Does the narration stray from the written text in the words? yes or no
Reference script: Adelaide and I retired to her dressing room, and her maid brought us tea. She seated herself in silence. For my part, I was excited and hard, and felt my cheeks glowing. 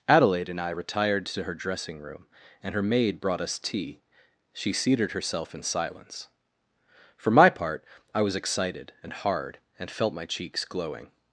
no